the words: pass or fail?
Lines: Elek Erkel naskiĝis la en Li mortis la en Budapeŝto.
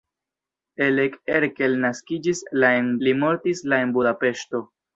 pass